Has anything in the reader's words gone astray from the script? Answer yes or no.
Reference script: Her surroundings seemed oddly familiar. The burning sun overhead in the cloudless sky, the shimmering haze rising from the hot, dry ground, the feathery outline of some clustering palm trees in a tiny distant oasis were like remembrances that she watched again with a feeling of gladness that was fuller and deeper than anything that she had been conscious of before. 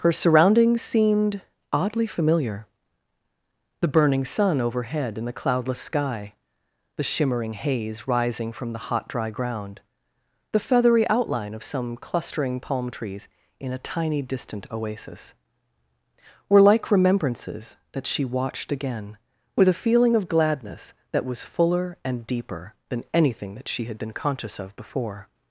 no